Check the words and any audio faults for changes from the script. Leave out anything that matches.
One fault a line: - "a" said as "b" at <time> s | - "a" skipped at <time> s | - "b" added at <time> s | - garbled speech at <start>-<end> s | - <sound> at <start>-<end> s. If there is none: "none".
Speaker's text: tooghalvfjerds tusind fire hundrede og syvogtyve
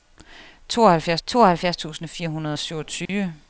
- "tooghalvfjerds" added at 1.3 s
- dropout at 3.1-3.1 s